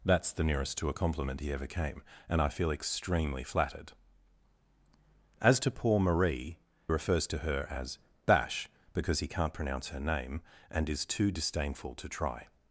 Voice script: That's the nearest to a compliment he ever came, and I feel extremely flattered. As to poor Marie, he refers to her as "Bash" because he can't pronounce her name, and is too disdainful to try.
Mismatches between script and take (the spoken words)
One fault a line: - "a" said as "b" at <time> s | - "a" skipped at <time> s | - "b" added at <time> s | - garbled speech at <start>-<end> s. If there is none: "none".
- "he" skipped at 6.6 s